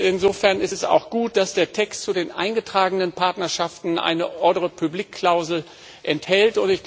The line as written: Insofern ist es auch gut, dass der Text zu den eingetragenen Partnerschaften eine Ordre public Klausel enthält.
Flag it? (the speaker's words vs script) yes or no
no